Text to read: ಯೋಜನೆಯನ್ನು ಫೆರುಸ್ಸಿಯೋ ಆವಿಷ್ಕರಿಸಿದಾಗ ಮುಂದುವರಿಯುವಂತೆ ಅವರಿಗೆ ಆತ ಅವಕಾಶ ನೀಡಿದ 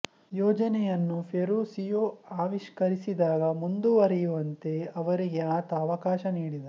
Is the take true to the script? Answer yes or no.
yes